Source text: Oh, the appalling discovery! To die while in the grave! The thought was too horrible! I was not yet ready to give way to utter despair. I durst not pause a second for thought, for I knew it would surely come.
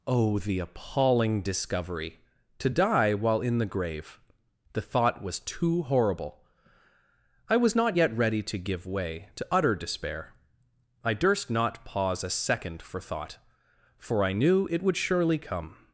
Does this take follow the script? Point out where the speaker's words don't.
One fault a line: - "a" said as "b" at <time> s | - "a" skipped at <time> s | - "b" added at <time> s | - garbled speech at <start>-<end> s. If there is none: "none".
none